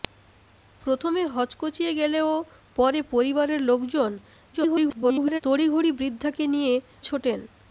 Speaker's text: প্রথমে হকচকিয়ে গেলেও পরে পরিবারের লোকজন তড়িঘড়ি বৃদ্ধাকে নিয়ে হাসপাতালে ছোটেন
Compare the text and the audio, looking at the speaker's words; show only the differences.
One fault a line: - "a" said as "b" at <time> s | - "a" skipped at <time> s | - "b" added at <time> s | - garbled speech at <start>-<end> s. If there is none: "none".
- garbled speech at 4.5-5.4 s
- "হাসপাতালে" skipped at 6.7 s